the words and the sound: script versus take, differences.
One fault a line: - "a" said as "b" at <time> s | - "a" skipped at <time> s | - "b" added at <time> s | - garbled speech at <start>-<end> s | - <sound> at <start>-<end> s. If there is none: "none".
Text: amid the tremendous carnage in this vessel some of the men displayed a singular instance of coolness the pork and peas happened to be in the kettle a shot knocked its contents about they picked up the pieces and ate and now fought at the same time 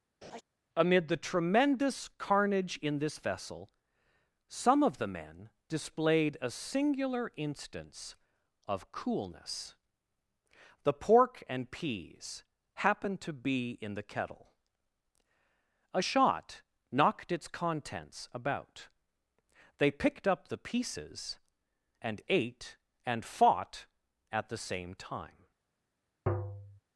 - laugh at 0.2-0.4 s
- "now" skipped at 23.2 s
- tap at 26.3-26.8 s